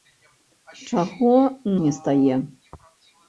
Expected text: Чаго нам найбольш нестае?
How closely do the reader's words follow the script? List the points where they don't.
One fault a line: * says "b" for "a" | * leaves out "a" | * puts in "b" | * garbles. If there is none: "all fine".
* leaves out "нам найбольш"